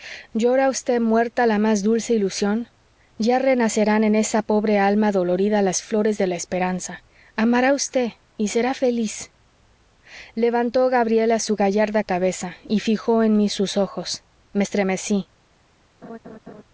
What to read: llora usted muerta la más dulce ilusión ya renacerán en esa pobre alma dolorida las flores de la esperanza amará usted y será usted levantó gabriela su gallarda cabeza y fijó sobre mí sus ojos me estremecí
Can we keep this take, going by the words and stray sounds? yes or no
no